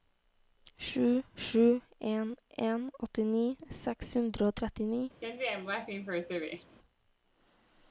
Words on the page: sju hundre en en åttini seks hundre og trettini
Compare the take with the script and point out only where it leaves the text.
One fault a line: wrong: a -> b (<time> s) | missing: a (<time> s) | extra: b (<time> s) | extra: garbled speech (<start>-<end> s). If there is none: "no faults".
wrong: hundre -> sju (1.5 s)